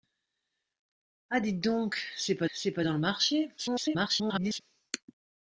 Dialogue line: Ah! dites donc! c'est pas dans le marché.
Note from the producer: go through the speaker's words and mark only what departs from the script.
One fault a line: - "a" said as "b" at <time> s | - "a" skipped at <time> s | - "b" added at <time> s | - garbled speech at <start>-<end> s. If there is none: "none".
- "c'est pas" added at 2.5 s
- garbled speech at 3.6-4.6 s